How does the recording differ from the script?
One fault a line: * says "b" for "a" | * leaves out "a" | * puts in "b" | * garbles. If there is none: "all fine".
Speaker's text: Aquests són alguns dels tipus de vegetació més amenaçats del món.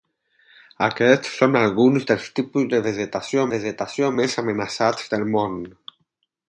* puts in "vegetació"